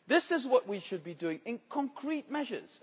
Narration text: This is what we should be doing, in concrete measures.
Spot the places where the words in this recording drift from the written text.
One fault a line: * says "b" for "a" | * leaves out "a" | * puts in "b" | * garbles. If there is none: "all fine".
all fine